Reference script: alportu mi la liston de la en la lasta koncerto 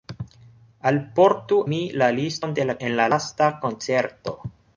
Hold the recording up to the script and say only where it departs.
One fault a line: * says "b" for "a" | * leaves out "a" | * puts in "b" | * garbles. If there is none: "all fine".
all fine